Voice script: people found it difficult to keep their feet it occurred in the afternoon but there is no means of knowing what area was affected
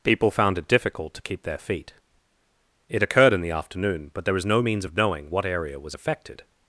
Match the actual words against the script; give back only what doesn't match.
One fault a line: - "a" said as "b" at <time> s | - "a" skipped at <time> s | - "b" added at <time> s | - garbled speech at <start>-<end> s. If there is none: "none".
- "is" said as "was" at 4.3 s